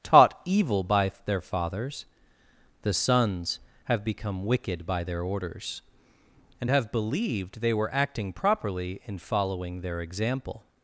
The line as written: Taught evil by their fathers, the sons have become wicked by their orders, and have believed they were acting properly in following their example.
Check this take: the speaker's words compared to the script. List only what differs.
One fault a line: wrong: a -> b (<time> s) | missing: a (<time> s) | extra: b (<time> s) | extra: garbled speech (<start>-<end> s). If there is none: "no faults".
no faults